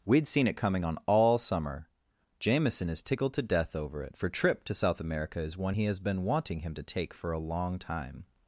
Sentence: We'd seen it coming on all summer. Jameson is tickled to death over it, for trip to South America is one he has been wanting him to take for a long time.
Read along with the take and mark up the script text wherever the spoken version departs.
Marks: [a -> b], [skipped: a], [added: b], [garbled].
We'd seen it coming on all summer. Jameson is tickled to death over it, for trip to South America is one he has been wanting him to take for a long time.